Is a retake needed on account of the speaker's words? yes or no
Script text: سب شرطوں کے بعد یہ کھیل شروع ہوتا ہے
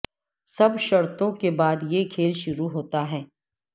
no